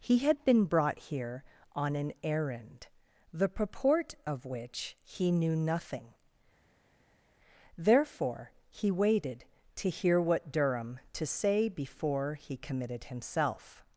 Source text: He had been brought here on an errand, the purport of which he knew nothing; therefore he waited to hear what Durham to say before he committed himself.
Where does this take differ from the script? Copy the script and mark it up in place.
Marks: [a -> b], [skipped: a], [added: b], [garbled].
He had been brought here on an errand, the purport of which he knew nothing; therefore he waited to hear what Durham to say before he committed himself.